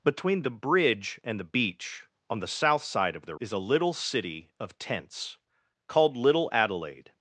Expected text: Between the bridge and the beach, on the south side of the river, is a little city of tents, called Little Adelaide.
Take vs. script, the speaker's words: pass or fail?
fail